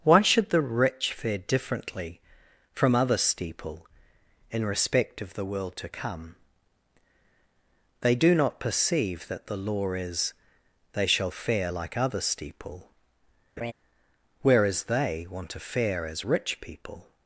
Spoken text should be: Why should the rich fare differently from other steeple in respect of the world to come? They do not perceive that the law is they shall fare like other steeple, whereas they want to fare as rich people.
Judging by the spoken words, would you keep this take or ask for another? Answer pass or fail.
pass